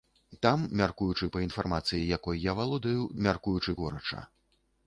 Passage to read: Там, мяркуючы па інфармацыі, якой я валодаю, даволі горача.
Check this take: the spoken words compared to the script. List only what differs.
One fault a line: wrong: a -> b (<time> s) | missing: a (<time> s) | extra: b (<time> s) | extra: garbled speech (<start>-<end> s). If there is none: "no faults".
wrong: даволі -> мяркуючы (3.2 s)